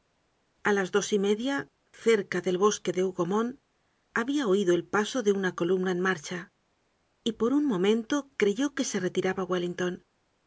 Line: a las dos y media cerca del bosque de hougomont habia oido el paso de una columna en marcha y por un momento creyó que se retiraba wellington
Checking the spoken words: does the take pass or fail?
pass